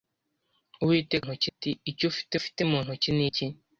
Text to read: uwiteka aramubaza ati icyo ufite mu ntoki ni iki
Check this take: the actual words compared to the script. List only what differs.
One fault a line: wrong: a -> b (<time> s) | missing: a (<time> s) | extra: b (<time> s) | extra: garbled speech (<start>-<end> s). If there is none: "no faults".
wrong: aramubaza -> ntoki (1.2 s)
extra: ufite (2.4 s)